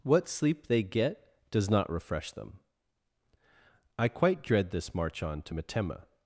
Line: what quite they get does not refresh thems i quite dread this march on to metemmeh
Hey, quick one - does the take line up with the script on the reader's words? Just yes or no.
no